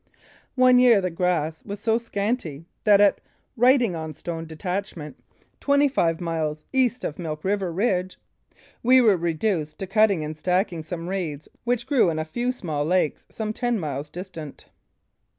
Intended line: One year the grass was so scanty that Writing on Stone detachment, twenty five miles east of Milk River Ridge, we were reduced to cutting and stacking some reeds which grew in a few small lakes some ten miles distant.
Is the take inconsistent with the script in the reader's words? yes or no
yes